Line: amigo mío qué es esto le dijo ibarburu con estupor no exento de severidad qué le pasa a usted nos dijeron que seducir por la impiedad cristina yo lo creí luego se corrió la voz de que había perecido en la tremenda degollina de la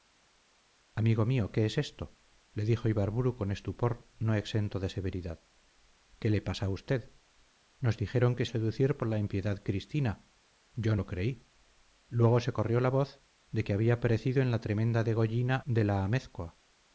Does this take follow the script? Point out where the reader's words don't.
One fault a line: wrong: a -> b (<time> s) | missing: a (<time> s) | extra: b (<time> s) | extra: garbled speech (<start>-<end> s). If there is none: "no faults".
no faults